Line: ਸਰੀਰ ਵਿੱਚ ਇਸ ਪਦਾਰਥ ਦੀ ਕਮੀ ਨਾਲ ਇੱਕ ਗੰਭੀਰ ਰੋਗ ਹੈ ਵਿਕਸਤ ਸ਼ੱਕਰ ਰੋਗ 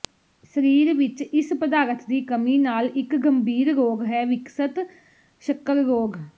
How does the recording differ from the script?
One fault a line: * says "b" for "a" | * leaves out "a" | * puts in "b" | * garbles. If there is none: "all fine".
all fine